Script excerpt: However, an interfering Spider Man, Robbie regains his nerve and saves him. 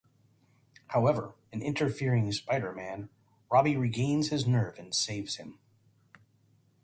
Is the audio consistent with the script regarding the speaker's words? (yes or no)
yes